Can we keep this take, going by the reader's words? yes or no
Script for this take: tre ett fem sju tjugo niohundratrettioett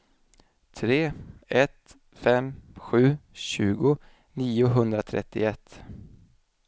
yes